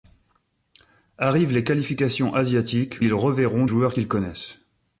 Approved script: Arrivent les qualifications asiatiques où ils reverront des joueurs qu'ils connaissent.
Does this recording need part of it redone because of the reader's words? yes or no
yes